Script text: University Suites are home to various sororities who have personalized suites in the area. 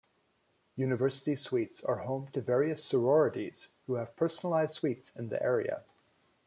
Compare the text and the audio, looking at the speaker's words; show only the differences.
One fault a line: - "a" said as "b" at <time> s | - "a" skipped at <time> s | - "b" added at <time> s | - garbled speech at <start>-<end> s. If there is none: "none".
none